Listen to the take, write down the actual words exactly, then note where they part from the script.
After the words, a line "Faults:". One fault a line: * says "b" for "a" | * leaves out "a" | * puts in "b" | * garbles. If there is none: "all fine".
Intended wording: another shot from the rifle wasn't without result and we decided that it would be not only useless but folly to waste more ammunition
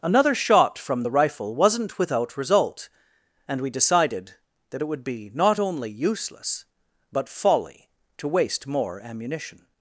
another shot from the rifle wasn't without result and we decided that it would be not only useless but folly to waste more ammunition
Faults:
all fine